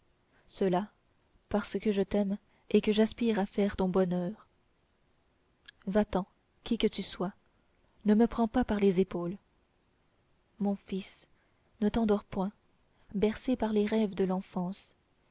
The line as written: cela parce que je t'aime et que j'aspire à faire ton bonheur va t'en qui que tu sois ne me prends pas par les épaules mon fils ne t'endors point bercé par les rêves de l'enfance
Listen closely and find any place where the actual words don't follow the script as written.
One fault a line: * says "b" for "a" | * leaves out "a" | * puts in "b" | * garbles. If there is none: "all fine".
all fine